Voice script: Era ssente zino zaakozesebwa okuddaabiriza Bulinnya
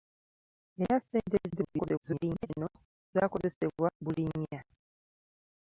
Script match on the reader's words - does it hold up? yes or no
no